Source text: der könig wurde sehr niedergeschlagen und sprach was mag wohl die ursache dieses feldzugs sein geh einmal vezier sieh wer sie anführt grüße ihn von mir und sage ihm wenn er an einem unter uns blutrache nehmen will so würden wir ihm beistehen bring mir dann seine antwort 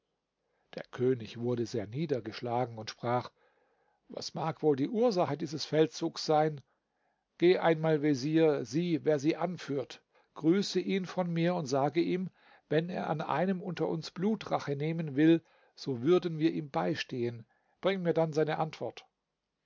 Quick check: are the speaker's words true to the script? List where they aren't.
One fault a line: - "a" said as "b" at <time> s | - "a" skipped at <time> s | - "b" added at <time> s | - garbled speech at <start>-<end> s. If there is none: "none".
none